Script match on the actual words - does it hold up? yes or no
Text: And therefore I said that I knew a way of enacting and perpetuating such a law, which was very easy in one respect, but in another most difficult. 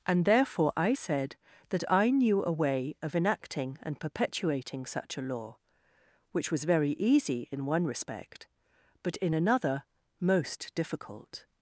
yes